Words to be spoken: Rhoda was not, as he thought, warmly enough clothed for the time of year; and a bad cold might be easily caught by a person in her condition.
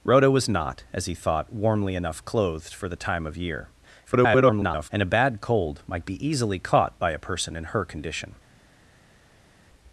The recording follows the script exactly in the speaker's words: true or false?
false